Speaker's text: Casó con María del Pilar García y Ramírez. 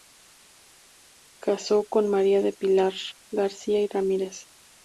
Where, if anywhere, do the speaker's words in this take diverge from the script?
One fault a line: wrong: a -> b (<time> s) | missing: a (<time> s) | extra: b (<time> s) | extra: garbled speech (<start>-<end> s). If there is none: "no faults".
no faults